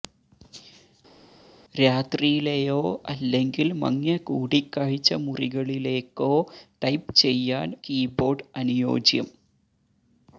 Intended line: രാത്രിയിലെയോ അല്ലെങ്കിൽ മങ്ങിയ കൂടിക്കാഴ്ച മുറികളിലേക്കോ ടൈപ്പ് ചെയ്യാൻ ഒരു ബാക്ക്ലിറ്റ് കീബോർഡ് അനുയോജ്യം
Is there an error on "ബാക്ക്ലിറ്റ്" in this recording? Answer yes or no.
yes